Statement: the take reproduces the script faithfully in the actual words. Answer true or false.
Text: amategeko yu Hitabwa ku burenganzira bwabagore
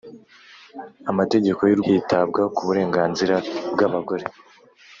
true